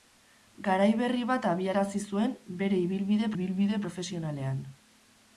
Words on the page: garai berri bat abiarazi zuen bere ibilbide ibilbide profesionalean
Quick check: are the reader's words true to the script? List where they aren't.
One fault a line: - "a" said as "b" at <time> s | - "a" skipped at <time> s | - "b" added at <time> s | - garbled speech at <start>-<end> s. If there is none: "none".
none